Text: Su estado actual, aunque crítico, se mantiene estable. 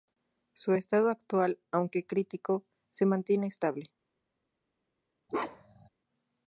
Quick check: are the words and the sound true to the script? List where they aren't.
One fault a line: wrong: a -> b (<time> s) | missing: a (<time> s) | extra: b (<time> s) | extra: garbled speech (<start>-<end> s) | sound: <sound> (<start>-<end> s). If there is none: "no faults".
sound: bark (5.3-5.9 s)